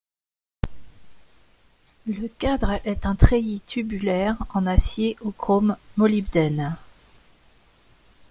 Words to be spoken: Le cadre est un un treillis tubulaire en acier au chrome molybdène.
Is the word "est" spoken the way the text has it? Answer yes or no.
yes